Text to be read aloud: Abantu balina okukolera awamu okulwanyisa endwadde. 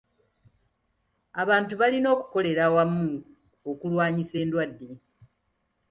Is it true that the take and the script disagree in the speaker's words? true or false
false